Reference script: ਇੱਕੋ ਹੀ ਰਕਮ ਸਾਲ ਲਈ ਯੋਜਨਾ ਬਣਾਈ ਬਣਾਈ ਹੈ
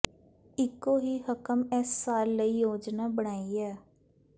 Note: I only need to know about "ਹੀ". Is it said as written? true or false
true